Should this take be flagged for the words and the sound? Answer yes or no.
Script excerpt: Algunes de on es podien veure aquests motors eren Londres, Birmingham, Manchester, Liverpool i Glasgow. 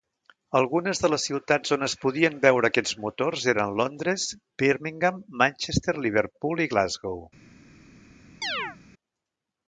yes